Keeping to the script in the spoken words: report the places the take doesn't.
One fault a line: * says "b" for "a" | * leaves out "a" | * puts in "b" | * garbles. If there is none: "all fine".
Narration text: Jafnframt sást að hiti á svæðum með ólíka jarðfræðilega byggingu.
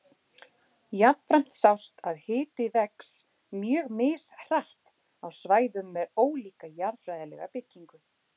* puts in "vex mjög mishratt"